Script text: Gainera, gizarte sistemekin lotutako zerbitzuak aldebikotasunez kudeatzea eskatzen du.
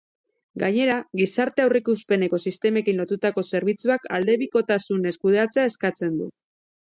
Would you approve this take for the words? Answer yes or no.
no